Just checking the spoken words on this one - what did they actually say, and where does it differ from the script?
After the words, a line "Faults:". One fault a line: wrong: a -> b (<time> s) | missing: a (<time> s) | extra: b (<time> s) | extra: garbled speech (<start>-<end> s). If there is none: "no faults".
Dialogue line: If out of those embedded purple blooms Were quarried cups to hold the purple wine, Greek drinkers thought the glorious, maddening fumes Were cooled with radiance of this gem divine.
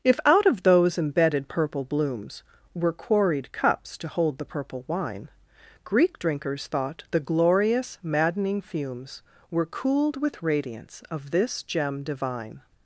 If out of those embedded purple blooms Were quarried cups to hold the purple wine, Greek drinkers thought the glorious, maddening fumes Were cooled with radiance of this gem divine.
Faults:
no faults